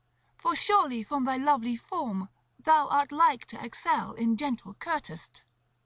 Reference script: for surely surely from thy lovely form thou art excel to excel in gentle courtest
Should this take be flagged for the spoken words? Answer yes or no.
yes